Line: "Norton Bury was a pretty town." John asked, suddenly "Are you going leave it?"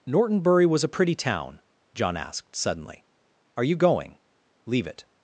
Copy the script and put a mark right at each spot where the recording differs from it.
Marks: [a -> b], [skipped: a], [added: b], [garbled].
"Norton Bury was a pretty town." John asked, suddenly "Are you going leave it?"